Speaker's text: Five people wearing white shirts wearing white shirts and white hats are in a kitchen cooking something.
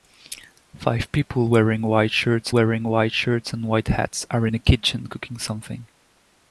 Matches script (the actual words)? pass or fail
pass